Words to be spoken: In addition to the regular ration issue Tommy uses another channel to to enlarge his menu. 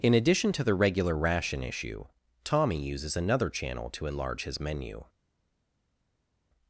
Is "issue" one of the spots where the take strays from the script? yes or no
no